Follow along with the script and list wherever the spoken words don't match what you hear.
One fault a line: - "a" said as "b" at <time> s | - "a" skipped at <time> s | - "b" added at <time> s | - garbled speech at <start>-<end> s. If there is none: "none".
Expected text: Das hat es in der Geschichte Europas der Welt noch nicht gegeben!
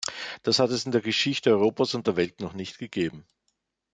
- "und" added at 1.9 s